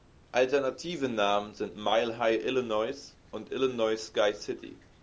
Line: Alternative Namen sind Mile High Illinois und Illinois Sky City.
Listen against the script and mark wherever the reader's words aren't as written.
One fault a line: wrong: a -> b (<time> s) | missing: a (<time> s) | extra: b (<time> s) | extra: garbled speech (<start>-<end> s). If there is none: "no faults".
no faults